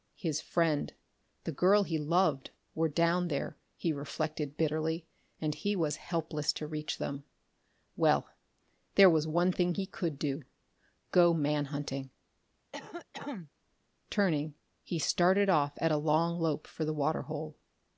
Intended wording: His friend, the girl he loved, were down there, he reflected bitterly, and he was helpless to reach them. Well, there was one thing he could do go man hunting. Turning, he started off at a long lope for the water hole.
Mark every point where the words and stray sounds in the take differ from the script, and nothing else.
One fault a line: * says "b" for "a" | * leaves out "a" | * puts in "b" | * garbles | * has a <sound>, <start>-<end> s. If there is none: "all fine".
* has a cough, 12.7-13.5 s